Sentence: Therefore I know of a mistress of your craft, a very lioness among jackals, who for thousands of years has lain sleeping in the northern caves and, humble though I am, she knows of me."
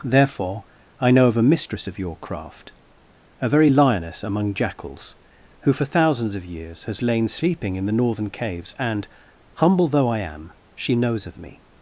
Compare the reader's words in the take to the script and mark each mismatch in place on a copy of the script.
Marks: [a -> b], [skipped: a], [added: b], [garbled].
Therefore I know of a mistress of your craft, a very lioness among jackals, who for thousands of years has lain sleeping in the northern caves and, humble though I am, she knows of me."